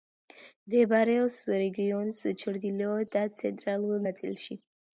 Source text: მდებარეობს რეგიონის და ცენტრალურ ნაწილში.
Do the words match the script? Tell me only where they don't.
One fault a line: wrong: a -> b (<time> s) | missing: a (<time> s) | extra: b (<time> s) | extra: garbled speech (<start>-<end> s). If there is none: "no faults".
extra: ჩრდილოეთ (2.5 s)